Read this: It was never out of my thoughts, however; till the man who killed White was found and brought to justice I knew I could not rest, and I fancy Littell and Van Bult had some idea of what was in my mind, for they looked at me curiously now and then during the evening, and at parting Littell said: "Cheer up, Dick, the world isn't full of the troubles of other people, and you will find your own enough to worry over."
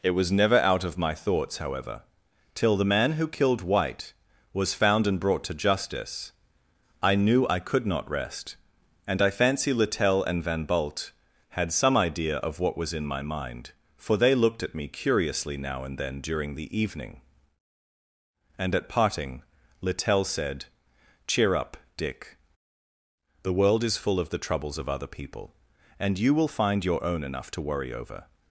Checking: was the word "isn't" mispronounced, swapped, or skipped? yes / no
yes